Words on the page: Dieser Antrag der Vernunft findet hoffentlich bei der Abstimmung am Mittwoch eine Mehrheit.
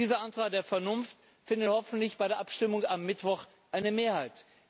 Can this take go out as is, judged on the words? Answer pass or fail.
pass